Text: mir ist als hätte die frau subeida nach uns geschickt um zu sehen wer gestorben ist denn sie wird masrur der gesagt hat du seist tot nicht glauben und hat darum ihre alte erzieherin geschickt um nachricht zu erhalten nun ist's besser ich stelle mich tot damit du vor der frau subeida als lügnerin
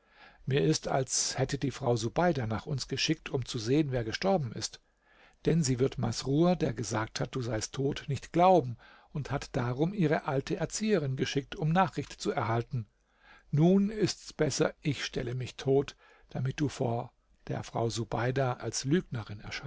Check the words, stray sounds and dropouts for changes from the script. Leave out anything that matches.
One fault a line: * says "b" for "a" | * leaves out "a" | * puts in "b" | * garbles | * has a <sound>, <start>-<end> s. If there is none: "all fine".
all fine